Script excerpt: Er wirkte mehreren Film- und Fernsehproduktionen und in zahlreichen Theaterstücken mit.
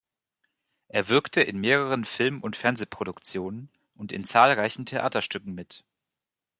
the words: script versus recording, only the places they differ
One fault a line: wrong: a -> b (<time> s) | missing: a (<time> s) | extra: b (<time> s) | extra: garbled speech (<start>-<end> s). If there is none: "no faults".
extra: in (1.4 s)